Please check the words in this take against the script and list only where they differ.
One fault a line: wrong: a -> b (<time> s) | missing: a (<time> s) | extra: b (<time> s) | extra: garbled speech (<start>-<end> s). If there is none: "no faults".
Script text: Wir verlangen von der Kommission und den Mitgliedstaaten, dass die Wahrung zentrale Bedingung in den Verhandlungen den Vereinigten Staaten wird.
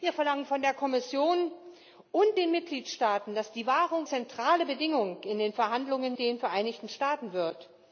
no faults